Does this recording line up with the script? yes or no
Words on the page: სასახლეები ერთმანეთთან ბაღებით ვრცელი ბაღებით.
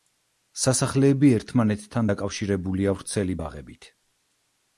no